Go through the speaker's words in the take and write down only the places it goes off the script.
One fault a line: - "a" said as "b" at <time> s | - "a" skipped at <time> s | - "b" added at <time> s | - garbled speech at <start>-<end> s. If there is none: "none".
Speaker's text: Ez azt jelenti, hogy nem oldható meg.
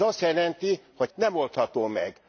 none